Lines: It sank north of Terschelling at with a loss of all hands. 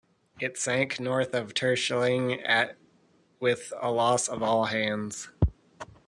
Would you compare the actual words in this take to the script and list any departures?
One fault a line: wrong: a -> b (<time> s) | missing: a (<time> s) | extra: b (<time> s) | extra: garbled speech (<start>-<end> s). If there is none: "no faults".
no faults